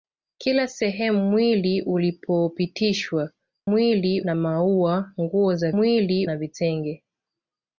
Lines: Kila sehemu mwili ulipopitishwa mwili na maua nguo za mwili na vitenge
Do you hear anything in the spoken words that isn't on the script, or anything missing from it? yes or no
no